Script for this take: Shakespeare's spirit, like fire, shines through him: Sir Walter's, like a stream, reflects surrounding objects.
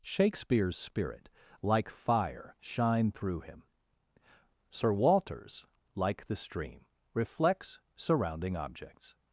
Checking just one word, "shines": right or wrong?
wrong